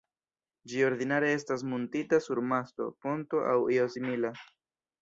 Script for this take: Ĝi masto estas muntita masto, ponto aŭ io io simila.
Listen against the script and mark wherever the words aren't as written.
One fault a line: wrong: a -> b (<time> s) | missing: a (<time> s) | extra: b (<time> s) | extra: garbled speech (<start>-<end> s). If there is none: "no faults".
wrong: masto -> ordinare (0.9 s)
extra: sur (2.3 s)
missing: io (3.9 s)